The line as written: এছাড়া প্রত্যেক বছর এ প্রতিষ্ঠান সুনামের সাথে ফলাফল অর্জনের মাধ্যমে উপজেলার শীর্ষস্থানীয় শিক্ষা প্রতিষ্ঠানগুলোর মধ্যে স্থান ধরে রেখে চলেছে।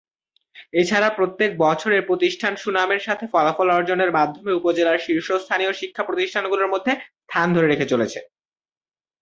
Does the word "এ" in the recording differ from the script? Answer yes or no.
no